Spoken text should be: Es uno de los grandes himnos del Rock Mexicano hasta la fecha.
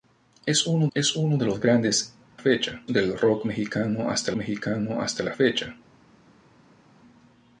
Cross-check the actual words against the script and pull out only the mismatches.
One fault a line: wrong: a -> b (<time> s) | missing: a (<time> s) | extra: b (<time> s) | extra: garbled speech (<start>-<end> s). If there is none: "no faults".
extra: es uno (1.0 s)
wrong: himnos -> fecha (2.3 s)
extra: Mexicano hasta (4.3 s)